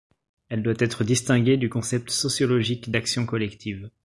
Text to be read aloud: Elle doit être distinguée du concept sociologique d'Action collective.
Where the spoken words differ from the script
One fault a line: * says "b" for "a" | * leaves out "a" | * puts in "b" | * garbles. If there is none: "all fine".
all fine